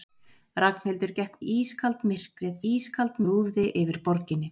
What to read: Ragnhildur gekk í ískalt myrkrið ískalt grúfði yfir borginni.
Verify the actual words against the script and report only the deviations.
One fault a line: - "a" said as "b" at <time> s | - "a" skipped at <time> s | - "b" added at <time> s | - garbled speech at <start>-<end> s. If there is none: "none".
none